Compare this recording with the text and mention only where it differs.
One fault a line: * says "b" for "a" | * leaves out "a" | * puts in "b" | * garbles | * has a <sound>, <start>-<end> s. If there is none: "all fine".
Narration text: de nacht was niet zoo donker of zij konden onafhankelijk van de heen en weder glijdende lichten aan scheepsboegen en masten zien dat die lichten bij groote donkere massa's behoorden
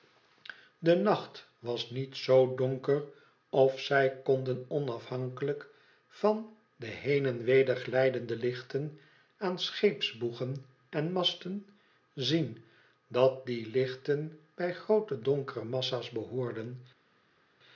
all fine